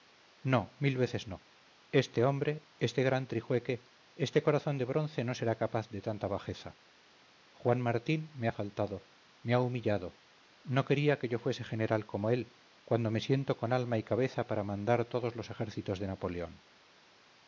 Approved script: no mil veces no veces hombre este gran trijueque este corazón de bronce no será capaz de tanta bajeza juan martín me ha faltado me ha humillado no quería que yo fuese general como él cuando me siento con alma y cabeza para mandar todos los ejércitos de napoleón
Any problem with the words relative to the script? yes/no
yes